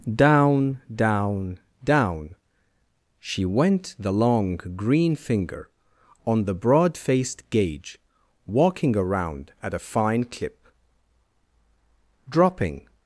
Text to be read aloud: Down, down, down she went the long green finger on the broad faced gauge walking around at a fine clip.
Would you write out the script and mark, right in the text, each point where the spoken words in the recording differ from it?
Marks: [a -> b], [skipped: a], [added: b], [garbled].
Down, down, down she went the long green finger on the broad faced gauge walking around at a fine clip. [added: Dropping]